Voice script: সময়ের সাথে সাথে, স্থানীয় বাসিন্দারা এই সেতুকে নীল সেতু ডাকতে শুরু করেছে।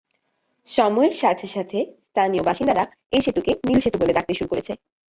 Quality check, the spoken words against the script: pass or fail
fail